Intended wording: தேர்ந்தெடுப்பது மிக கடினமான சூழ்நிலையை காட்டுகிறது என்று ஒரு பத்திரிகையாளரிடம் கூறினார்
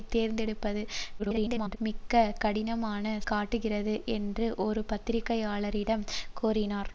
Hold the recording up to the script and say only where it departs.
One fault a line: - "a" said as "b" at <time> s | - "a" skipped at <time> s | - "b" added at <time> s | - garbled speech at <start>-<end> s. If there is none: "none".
- garbled speech at 1.2-1.8 s
- "சூழ்நிலையை" skipped at 3.0 s